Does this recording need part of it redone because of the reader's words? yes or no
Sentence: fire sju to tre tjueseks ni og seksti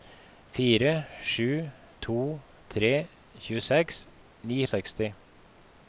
no